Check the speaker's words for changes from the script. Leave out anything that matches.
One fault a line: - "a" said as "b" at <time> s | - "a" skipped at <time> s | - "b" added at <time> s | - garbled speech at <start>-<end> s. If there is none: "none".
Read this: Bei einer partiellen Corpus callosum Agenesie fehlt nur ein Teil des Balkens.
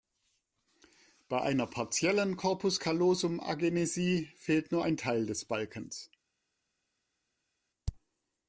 none